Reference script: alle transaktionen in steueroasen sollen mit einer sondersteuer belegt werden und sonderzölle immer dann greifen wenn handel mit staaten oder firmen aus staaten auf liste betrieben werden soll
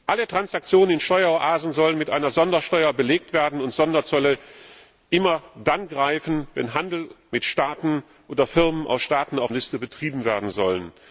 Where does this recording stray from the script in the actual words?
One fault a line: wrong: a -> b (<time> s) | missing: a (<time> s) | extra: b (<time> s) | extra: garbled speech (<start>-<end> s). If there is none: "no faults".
no faults